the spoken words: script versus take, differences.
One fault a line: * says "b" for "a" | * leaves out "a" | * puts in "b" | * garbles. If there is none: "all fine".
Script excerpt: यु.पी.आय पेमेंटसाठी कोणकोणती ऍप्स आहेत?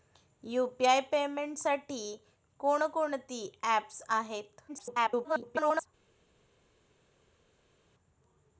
* garbles